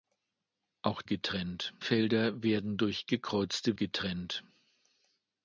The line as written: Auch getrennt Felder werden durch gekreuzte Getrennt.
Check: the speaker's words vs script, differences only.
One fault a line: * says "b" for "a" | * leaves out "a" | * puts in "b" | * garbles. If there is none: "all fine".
all fine